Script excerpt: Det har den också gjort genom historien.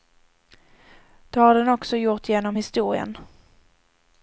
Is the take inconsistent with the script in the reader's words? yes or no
no